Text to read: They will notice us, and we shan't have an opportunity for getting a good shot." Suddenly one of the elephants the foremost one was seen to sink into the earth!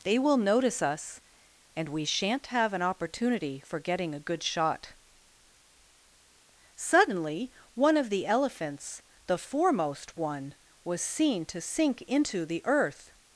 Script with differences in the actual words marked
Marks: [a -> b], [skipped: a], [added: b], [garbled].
They will notice us, and we shan't have an opportunity for getting a good shot." Suddenly one of the elephants the foremost one was seen to sink into the earth!